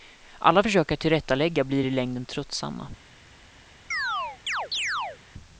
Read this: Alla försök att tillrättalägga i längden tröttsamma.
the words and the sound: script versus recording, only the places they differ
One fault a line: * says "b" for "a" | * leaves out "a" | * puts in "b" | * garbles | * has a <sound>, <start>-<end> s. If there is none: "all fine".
* puts in "blir"
* has a chirp, 3.9-5.2 s